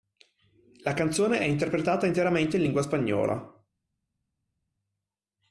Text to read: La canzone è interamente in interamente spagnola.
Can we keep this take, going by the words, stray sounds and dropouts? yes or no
no